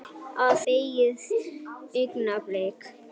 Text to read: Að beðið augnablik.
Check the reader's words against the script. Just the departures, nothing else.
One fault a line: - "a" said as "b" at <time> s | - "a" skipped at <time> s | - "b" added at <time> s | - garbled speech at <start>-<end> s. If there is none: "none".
none